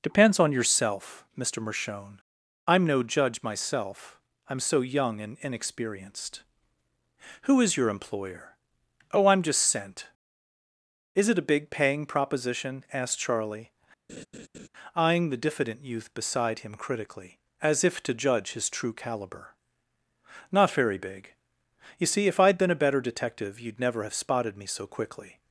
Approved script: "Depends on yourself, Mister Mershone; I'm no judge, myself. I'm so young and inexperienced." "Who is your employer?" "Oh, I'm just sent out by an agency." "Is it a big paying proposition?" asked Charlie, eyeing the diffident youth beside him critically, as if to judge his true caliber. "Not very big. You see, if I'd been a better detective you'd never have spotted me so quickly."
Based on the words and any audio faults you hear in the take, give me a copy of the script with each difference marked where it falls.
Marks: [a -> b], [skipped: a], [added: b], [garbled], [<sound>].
"Depends on yourself, Mister Mershone; I'm no judge, myself. I'm so young and inexperienced." "Who is your employer?" "Oh, I'm just sent [skipped: out by an agency."] "Is it a big paying proposition?" asked Charlie, [laugh] eyeing the diffident youth beside him critically, as if to judge his true caliber. "Not very big. You see, if I'd been a better detective you'd never have spotted me so quickly."